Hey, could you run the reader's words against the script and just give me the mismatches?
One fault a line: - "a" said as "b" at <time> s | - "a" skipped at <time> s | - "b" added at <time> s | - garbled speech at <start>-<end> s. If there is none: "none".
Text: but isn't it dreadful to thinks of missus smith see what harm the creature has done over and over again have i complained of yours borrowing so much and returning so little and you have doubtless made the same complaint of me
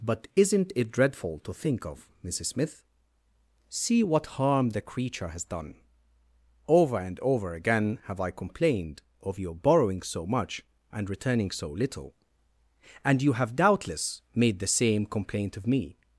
- "thinks" said as "think" at 1.5 s
- "yours" said as "your" at 9.4 s